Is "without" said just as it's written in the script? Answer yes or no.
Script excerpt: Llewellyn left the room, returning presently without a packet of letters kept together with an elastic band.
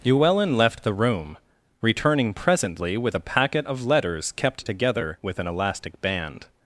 no